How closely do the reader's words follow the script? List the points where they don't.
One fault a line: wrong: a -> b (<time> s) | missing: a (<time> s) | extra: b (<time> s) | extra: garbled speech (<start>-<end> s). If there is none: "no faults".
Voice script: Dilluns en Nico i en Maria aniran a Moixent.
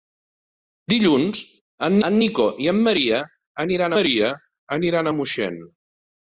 extra: en (2.1 s)
extra: Maria aniran (4.0 s)